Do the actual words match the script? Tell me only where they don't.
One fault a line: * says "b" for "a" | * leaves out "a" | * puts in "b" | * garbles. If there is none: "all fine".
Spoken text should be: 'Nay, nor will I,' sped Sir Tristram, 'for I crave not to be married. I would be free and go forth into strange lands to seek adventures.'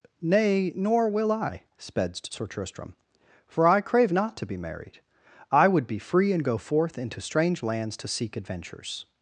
all fine